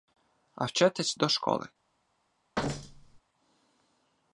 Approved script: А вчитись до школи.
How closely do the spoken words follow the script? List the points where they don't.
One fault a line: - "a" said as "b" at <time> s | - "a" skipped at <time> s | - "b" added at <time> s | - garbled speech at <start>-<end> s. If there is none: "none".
none